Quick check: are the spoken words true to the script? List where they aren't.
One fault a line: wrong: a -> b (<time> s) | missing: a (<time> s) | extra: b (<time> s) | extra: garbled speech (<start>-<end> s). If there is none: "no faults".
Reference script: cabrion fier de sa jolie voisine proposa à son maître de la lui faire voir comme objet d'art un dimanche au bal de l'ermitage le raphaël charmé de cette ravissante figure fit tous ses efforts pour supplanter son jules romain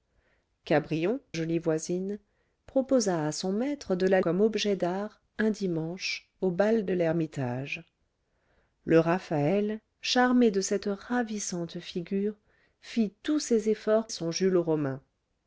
missing: fier de sa (1.2 s)
missing: lui faire voir (4.2 s)
missing: pour supplanter (14.1 s)